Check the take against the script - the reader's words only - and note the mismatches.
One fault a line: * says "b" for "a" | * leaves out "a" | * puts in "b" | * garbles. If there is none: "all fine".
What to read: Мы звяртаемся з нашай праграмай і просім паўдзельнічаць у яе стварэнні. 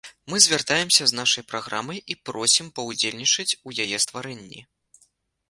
all fine